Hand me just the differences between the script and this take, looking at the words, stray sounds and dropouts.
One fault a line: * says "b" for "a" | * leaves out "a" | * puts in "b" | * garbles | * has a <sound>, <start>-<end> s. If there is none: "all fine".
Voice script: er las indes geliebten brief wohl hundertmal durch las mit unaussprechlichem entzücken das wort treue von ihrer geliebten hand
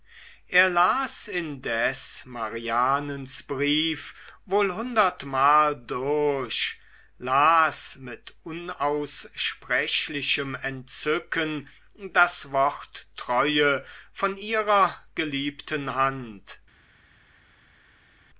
* says "marianens" for "geliebten"